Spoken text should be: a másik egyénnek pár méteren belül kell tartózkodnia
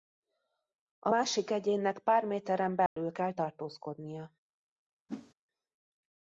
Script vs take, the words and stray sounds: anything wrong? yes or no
yes